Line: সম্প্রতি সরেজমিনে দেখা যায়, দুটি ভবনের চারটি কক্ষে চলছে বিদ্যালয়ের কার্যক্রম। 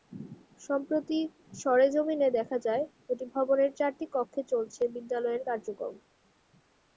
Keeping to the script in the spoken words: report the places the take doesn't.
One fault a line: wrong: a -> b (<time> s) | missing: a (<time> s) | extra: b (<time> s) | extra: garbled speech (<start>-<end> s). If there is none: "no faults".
no faults